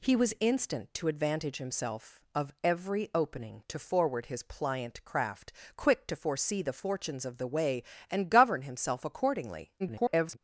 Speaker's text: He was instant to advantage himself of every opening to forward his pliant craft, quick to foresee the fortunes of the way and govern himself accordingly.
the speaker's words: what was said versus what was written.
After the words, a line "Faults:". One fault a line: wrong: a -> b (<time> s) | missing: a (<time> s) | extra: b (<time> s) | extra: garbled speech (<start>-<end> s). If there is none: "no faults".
He was instant to advantage himself of every opening to forward his pliant craft, quick to foresee the fortunes of the way and govern himself accordingly. [garbled]
Faults:
extra: garbled speech (9.8-10.4 s)